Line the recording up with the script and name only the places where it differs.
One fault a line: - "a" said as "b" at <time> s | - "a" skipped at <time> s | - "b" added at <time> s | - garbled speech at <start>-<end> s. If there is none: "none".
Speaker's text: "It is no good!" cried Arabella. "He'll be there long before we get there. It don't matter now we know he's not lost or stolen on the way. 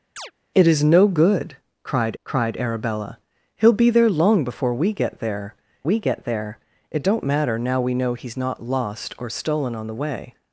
- "cried" added at 2.2 s
- "we get there" added at 5.8 s